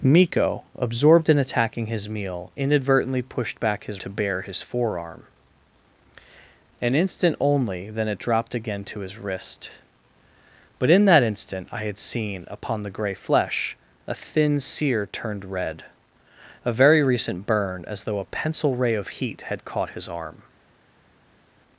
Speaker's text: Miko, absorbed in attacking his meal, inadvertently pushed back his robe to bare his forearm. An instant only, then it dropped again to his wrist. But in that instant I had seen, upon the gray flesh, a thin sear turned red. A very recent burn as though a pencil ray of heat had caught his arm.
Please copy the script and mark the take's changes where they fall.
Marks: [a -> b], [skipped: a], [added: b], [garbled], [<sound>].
Miko, absorbed in attacking his meal, inadvertently pushed back his [skipped: robe] to bare his forearm. An instant only, then it dropped again to his wrist. But in that instant I had seen, upon the gray flesh, a thin sear turned red. A very recent burn as though a pencil ray of heat had caught his arm.